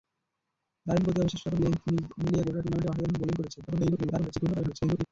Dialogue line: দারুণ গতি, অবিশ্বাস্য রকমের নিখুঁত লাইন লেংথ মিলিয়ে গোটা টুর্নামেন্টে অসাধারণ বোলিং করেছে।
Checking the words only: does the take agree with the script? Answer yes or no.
no